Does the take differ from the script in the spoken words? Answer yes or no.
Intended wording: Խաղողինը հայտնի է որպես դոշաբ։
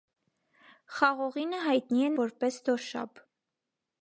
no